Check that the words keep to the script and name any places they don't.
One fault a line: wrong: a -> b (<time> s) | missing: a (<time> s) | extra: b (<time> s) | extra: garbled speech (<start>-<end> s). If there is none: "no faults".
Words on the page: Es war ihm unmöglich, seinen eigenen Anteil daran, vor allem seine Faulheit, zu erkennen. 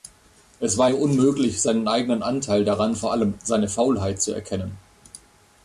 no faults